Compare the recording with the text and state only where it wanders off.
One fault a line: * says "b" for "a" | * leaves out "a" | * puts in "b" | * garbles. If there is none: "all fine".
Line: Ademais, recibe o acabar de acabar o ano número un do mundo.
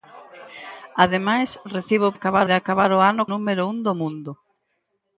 all fine